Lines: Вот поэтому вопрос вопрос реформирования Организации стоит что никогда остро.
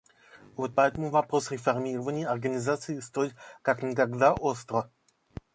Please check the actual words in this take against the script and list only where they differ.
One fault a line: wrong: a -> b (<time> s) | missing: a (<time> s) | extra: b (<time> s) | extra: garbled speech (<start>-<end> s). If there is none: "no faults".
missing: вопрос (1.5 s)
wrong: что -> как (3.6 s)